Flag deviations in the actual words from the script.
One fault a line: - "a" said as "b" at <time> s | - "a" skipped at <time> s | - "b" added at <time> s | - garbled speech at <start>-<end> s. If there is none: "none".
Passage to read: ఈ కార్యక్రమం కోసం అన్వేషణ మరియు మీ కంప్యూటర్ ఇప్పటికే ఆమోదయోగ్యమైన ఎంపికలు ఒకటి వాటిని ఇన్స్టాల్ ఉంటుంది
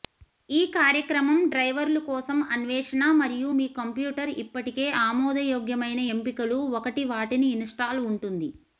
- "డ్రైవర్లు" added at 1.5 s